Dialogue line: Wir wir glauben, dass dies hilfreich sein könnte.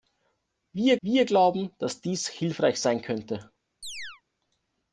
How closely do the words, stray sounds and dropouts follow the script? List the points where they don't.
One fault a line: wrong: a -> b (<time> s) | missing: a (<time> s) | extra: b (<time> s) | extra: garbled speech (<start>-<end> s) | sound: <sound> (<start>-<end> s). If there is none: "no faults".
sound: chirp (3.8-4.2 s)